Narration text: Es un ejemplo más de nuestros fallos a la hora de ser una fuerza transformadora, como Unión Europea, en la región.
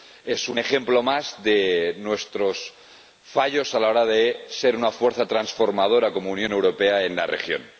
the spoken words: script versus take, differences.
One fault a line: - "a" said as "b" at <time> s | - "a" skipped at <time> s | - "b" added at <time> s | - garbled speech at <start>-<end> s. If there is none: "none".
none